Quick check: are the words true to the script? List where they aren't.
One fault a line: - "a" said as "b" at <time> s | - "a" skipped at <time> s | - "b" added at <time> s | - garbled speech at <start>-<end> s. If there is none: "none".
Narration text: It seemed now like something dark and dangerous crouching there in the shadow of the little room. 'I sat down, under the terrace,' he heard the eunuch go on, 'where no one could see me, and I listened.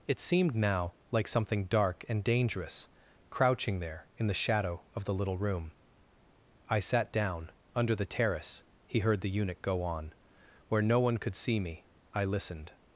- "and" skipped at 11.9 s